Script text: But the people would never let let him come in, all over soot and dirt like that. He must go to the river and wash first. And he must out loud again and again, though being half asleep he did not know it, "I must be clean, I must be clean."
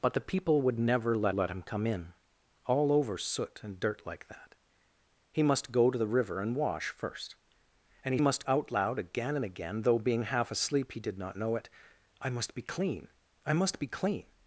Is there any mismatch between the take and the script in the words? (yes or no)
no